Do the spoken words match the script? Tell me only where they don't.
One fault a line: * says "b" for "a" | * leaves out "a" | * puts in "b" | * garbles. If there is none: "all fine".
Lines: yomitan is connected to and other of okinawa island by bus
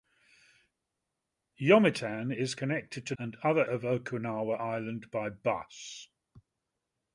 all fine